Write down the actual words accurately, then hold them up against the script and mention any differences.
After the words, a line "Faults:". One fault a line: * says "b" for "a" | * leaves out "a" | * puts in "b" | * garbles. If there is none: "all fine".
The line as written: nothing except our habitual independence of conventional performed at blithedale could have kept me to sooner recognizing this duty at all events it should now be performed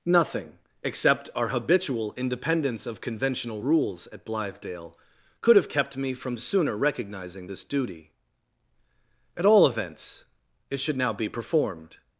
nothing except our habitual independence of conventional rules at blithedale could have kept me from sooner recognizing this duty at all events it should now be performed
Faults:
* says "rules" for "performed"
* says "from" for "to"